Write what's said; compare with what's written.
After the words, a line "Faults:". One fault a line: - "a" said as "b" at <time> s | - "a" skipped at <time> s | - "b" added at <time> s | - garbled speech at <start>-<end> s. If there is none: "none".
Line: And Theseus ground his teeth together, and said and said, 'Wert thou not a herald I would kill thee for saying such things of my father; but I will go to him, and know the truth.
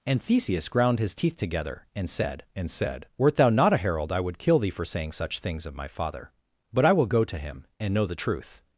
And Theseus ground his teeth together, and said and said, 'Wert thou not a herald I would kill thee for saying such things of my father; but I will go to him, and know the truth.
Faults:
none